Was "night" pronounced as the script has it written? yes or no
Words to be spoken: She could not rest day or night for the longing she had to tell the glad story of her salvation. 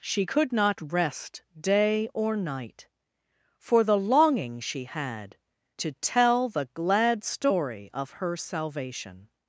yes